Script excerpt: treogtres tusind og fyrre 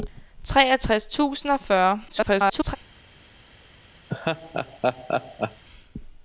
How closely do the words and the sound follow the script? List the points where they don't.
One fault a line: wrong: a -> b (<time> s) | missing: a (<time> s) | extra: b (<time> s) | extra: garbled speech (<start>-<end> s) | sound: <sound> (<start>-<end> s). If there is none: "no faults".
extra: garbled speech (2.1-2.8 s)
sound: laugh (4.1-5.6 s)